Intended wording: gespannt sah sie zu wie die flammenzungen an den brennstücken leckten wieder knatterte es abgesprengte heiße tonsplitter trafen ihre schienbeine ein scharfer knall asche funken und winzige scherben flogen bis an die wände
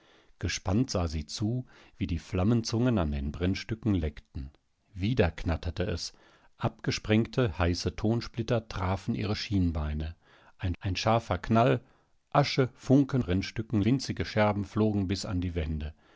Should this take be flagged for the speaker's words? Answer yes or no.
yes